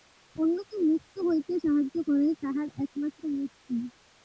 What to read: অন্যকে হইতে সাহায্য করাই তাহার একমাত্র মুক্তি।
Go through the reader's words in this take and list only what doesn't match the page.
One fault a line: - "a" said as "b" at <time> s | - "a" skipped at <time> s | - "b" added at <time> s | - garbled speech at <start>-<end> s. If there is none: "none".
- "মুক্ত" added at 0.9 s